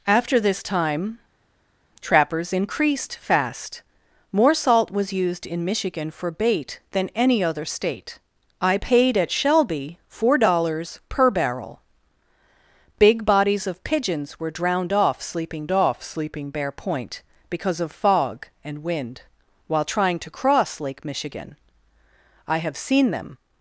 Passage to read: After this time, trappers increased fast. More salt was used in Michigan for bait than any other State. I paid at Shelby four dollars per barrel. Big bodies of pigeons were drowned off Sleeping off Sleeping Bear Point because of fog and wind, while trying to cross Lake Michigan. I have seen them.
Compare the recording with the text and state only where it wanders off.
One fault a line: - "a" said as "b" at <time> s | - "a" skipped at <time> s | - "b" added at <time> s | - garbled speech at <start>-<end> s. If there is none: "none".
none